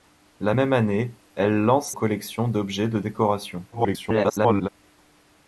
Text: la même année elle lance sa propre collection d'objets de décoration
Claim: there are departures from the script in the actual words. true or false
true